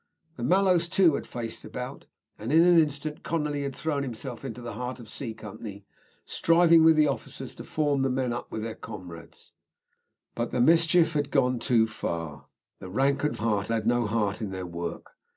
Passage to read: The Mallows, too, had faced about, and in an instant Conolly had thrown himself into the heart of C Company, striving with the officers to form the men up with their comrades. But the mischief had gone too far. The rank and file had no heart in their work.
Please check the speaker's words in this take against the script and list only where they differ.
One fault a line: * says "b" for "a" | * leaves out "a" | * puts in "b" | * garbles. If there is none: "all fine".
* says "heart" for "file"